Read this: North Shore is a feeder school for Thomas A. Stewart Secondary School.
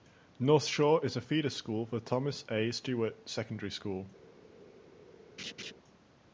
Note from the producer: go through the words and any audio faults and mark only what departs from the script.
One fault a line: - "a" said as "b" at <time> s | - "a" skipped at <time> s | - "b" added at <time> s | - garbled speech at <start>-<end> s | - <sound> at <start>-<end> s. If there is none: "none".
- laugh at 5.4-5.7 s